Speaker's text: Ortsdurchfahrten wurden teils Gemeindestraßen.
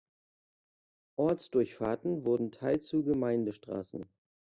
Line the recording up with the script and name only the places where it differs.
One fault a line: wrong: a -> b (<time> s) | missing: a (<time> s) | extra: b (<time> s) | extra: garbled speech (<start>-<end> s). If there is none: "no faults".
extra: zu (2.9 s)